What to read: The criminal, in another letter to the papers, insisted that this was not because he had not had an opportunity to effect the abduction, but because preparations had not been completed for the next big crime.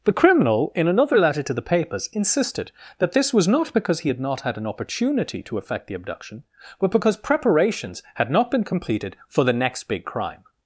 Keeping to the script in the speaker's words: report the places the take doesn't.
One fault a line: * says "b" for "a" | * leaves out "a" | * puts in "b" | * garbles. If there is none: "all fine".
all fine